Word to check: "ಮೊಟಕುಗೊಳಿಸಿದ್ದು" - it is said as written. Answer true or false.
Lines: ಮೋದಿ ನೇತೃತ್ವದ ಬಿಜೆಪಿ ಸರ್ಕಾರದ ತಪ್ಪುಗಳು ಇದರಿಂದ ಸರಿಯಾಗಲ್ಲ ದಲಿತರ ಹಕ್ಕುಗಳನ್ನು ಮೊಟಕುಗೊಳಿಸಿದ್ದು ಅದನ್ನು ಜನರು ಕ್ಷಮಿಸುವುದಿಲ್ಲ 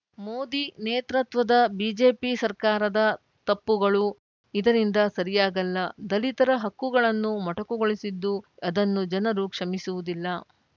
true